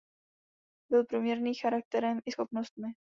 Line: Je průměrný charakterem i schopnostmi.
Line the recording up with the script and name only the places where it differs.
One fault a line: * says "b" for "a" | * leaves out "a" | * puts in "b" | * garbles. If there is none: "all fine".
* says "Byl" for "Je"